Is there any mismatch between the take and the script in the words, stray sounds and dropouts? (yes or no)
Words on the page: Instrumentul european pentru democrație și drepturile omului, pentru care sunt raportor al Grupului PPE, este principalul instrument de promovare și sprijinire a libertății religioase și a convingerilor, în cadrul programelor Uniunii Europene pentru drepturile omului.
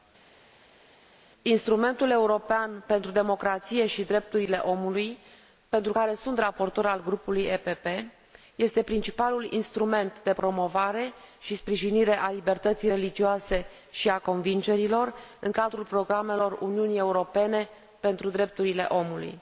no